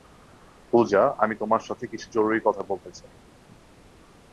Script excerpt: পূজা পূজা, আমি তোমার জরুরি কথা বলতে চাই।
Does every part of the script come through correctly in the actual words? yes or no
no